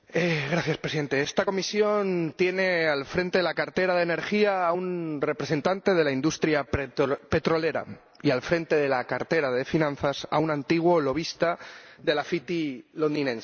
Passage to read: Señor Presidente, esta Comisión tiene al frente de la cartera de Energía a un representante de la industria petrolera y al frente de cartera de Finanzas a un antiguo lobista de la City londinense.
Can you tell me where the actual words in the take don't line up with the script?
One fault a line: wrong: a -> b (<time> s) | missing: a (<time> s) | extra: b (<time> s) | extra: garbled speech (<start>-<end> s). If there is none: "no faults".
extra: la (8.9 s)